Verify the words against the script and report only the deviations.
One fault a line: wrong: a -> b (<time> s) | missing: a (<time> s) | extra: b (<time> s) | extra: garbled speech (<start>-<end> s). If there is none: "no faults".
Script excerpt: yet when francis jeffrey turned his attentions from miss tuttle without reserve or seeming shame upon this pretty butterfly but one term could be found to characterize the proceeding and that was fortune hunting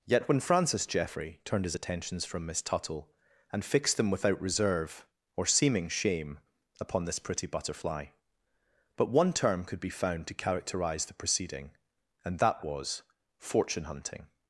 extra: and fixed them (3.5 s)